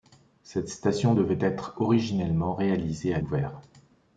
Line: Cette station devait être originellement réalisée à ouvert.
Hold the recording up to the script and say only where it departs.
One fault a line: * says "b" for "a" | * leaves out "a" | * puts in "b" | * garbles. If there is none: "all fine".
all fine